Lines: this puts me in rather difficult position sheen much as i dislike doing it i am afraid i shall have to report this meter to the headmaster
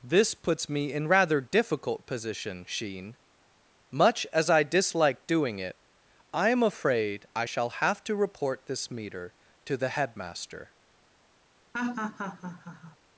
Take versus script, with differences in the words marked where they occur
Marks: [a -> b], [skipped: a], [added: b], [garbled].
this puts me in rather difficult position sheen much as i dislike doing it i am afraid i shall have to report this meter to the headmaster